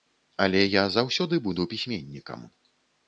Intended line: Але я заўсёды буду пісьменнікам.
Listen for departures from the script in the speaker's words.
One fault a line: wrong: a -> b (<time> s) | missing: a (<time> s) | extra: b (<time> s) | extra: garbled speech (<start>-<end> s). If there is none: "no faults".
no faults